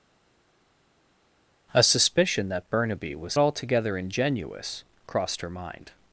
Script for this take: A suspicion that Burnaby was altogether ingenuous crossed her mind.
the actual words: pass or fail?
pass